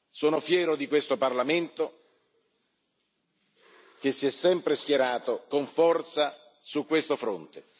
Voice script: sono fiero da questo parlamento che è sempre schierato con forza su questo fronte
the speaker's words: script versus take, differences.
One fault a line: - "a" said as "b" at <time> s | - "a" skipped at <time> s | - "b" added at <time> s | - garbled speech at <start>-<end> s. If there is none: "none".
- "da" said as "di" at 0.8 s
- "si" added at 4.1 s